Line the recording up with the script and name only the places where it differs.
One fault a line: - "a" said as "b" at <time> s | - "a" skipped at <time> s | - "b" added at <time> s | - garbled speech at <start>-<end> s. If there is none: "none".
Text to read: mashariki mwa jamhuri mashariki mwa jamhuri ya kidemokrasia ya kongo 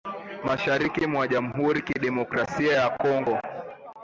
- "mashariki mwa jamhuri" skipped at 1.8 s